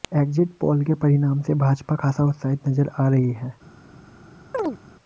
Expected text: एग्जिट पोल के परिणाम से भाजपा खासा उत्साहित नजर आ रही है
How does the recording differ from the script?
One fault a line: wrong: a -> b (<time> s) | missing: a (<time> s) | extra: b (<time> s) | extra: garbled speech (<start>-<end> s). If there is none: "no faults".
no faults